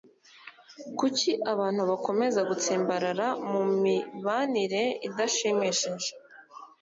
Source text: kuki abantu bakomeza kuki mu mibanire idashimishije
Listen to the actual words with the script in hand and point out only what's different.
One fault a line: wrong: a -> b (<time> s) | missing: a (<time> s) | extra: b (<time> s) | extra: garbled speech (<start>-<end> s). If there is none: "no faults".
wrong: kuki -> gutsimbarara (2.5 s)